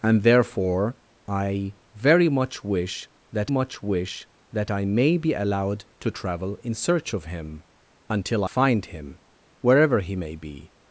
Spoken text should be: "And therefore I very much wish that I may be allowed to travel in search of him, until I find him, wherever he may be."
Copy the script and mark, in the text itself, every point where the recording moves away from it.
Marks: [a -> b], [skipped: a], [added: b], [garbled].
"And therefore I very much wish that [added: much wish that] I may be allowed to travel in search of him, until [skipped: I] find him, wherever he may be."